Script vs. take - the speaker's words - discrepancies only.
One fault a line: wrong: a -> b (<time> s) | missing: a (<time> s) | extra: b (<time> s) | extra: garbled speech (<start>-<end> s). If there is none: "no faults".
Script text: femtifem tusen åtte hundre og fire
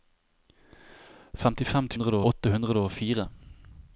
wrong: tusen -> hundre (1.9 s)